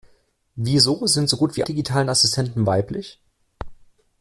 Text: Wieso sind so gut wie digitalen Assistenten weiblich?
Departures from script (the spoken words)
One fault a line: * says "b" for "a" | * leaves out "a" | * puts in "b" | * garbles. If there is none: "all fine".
all fine